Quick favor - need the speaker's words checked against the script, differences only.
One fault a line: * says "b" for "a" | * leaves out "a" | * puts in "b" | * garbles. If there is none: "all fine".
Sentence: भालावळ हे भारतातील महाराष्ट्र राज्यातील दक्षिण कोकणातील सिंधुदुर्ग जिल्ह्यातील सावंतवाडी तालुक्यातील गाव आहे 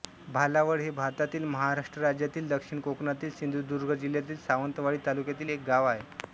* puts in "एक"